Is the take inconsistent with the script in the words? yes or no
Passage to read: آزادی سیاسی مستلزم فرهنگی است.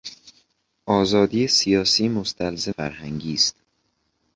no